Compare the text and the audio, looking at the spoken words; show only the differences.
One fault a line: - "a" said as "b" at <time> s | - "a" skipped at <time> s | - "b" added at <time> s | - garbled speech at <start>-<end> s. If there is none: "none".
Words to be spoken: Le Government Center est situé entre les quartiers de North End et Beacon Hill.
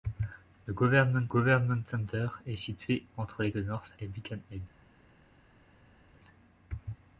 - "Government" added at 1.3 s
- "quartiers" skipped at 3.5 s
- "End" skipped at 3.9 s